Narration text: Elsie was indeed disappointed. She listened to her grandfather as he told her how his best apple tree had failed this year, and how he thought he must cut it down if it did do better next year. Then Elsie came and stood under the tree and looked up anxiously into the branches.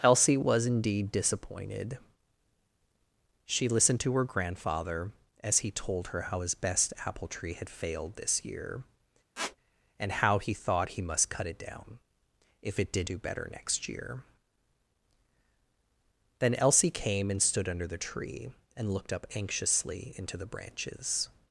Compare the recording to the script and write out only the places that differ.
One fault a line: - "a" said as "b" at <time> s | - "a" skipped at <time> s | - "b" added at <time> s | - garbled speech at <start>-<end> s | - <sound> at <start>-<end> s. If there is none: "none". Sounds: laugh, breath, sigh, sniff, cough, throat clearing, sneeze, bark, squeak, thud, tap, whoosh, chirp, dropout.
- squeak at 9.4-9.6 s